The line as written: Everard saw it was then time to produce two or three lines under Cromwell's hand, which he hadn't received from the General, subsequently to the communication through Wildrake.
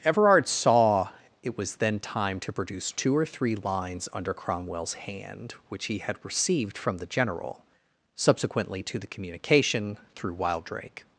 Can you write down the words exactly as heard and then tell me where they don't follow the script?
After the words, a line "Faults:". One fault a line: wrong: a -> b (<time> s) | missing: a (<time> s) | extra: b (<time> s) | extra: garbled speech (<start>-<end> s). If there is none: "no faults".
Everard saw it was then time to produce two or three lines under Cromwell's hand, which he had received from the General, subsequently to the communication through Wildrake.
Faults:
wrong: hadn't -> had (6.0 s)